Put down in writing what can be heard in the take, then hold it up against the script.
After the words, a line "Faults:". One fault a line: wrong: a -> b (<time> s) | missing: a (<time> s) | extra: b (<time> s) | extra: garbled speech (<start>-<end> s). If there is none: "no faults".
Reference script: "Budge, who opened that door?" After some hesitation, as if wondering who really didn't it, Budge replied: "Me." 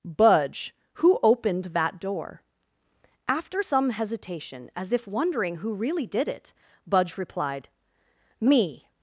"Budge, who opened that door?" After some hesitation, as if wondering who really did it, Budge replied: "Me."
Faults:
wrong: didn't -> did (6.1 s)